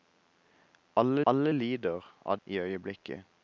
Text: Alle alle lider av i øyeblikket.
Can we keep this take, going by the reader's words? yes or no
yes